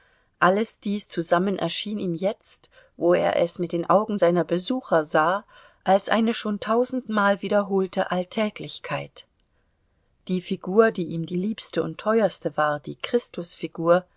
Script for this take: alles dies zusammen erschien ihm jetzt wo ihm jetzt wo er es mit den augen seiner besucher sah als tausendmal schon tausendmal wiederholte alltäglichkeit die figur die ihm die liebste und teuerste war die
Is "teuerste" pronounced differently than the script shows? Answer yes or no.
no